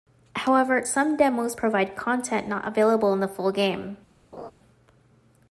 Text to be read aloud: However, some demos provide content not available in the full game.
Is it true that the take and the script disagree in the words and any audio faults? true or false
true